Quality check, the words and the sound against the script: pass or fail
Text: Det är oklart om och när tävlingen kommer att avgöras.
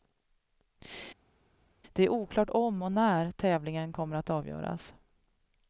pass